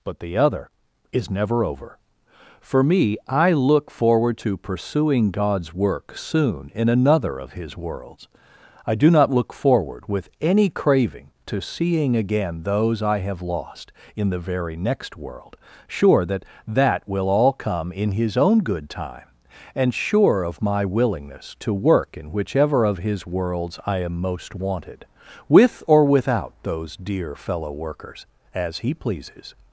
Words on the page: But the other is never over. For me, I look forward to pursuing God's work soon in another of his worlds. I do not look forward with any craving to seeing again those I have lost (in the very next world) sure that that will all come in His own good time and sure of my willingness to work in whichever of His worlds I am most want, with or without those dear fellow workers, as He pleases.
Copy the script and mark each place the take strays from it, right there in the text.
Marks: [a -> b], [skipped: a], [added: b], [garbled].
But the other is never over. For me, I look forward to pursuing God's work soon in another of his worlds. I do not look forward with any craving to seeing again those I have lost (in the very next world) sure that that will all come in His own good time and sure of my willingness to work in whichever of His worlds I am most [want, -> wanted] with or without those dear fellow workers, as He pleases.